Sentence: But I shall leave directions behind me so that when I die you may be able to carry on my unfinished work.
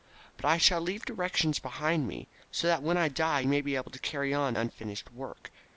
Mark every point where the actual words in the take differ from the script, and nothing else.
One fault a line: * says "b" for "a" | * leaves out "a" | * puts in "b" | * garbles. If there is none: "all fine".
* leaves out "you"
* leaves out "my"